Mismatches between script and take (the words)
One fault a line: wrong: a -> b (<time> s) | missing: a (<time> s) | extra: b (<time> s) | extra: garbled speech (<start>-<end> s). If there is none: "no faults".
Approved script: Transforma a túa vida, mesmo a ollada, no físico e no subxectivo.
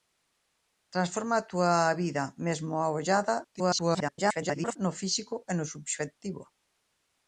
extra: garbled speech (3.4-4.8 s)